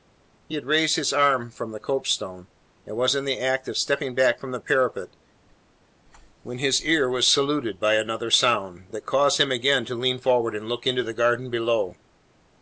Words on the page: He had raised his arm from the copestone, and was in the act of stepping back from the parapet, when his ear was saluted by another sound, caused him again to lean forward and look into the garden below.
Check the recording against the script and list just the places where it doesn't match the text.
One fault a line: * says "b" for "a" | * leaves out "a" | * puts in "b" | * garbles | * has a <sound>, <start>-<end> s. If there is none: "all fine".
* puts in "that"